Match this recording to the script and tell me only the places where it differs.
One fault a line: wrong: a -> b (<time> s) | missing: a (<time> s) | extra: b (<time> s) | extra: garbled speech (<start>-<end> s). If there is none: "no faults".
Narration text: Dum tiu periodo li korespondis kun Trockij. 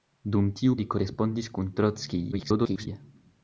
missing: periodo (0.8 s)
extra: garbled speech (2.3-2.9 s)